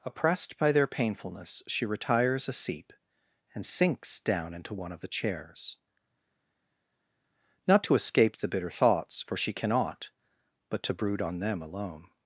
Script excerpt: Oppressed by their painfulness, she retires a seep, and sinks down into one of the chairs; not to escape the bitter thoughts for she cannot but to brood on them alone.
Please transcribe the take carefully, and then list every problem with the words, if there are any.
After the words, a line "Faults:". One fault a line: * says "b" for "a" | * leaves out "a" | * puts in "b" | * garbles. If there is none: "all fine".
Oppressed by their painfulness, she retires a seep, and sinks down into one of the chairs; not to escape the bitter thoughts for she cannot but to brood on them alone.
Faults:
all fine